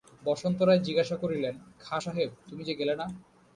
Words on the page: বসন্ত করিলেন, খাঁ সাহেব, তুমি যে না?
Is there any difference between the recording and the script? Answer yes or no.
yes